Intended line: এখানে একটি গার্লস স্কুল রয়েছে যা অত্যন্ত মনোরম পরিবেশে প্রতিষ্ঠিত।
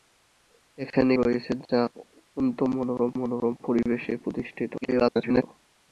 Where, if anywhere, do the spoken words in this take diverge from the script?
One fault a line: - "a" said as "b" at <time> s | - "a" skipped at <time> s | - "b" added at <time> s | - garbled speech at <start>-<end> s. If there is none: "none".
- "একটি গার্লস স্কুল" skipped at 1.1 s
- "মনোরম" added at 3.2 s
- garbled speech at 4.8-5.4 s